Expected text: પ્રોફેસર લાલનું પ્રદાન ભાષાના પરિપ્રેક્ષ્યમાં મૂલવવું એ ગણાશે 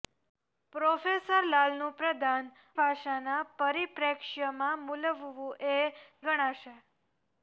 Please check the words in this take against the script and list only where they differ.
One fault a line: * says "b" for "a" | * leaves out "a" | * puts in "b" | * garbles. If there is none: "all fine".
all fine